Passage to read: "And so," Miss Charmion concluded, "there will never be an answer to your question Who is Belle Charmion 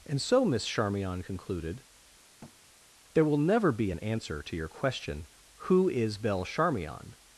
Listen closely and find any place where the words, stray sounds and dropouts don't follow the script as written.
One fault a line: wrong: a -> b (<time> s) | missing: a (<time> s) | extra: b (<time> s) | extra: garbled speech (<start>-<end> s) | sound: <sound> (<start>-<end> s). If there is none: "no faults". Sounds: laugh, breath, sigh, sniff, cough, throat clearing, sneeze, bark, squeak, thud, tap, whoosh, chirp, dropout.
sound: thud (2.4-2.6 s)